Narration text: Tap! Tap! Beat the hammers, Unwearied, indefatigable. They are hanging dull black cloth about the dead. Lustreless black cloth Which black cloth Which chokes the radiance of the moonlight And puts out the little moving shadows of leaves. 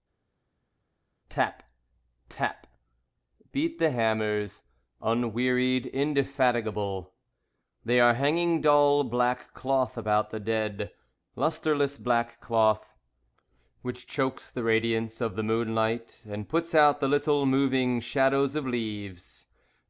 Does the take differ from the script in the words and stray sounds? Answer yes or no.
yes